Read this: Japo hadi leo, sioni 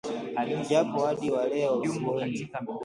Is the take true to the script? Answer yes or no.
no